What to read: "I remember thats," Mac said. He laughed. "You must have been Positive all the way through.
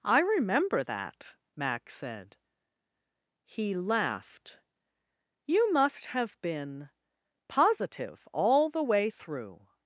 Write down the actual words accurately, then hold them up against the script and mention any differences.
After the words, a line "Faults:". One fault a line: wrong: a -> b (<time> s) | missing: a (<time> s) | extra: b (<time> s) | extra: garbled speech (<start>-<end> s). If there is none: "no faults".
"I remember that," Mac said. He laughed. "You must have been Positive all the way through.
Faults:
wrong: thats -> that (0.8 s)